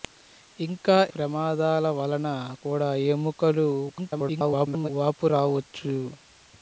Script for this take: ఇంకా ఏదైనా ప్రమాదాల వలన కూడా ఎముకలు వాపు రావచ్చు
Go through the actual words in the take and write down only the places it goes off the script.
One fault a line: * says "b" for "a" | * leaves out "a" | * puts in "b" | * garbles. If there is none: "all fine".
* leaves out "ఏదైనా"
* garbles